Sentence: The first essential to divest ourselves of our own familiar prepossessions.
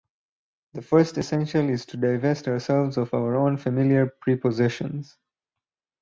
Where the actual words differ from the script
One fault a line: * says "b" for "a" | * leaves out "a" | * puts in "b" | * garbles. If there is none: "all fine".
* puts in "is"